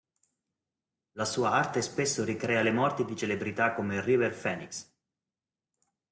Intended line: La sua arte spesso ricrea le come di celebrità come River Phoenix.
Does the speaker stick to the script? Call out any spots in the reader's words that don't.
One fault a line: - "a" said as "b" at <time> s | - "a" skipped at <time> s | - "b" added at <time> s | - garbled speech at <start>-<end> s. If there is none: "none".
- "come" said as "morti" at 2.7 s